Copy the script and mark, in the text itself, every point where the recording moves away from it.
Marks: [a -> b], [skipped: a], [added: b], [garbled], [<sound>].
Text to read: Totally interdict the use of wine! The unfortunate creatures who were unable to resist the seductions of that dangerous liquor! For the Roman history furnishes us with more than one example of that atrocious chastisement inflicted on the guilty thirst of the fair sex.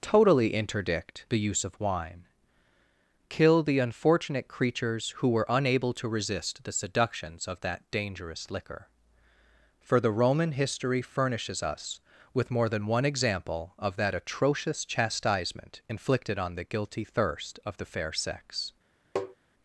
Totally interdict the use of wine! [added: Kill] The unfortunate creatures who were unable to resist the seductions of that dangerous liquor! For the Roman history furnishes us with more than one example of that atrocious chastisement inflicted on the guilty thirst of the fair sex. [tap]